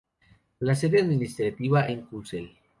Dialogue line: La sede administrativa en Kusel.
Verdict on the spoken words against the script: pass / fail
pass